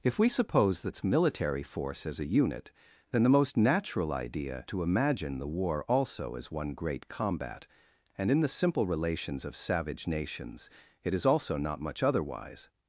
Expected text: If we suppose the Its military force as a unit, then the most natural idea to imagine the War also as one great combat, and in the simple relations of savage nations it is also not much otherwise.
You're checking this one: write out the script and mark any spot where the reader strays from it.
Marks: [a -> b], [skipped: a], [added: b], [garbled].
If we suppose the Its military force as a unit, then the most natural idea to imagine the War also as one great combat, and in the simple relations of savage nations it is also not much otherwise.